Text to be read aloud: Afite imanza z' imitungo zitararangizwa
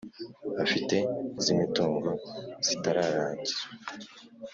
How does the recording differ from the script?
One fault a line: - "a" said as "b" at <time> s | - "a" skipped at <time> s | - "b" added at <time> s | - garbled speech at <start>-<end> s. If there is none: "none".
- "imanza" skipped at 0.9 s